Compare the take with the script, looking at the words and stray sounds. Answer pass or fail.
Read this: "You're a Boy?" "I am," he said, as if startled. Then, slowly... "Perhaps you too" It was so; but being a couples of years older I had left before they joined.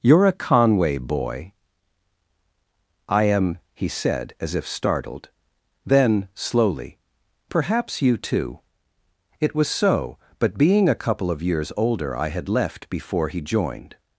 fail